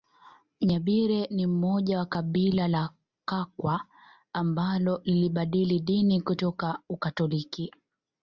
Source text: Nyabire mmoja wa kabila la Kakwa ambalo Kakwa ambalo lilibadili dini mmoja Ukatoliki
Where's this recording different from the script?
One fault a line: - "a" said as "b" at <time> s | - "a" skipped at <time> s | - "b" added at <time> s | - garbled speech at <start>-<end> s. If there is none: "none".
- "ni" added at 1.3 s
- "Kakwa ambalo" skipped at 5.0 s
- "mmoja" said as "kutoka" at 6.2 s